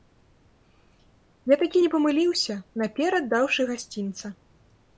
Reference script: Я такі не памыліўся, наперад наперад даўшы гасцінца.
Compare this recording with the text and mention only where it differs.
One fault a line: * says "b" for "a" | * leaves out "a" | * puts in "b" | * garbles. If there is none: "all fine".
* leaves out "наперад"